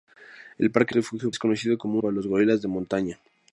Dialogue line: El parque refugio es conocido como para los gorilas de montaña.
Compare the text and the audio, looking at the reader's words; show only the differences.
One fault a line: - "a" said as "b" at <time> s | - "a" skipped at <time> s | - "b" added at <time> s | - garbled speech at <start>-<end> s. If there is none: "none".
none